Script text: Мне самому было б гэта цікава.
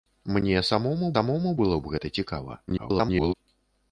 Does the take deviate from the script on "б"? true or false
false